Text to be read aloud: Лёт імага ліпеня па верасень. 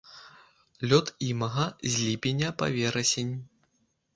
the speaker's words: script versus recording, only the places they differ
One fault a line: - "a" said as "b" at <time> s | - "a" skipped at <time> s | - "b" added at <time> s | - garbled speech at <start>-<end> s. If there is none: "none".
- "з" added at 1.9 s